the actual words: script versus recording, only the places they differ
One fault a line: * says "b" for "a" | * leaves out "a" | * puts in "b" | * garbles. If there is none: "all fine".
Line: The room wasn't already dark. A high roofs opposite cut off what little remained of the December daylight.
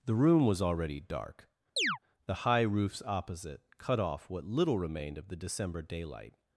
* says "was" for "wasn't"
* says "The" for "A"